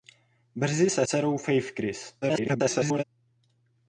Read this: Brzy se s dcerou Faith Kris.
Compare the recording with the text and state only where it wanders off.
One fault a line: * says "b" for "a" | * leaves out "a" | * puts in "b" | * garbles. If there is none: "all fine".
* leaves out "s"
* garbles